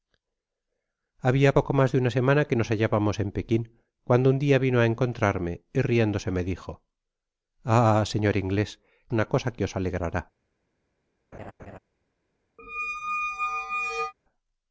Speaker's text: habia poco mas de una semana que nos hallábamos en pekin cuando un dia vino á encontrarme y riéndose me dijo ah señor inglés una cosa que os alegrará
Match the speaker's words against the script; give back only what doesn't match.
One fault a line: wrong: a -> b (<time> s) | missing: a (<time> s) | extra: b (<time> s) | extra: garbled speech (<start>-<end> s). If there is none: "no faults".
no faults